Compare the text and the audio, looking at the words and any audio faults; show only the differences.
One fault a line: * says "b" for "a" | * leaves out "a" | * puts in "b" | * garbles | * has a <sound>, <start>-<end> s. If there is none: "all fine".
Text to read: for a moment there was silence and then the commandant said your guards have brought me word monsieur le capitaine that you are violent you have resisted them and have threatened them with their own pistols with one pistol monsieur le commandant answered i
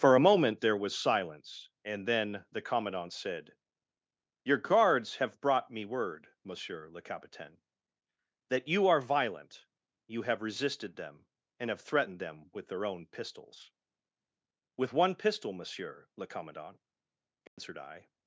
* has a dropout, 17.5-17.6 s